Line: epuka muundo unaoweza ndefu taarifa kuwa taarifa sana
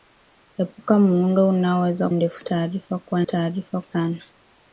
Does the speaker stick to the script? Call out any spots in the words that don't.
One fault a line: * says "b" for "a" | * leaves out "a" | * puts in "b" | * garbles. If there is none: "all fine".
all fine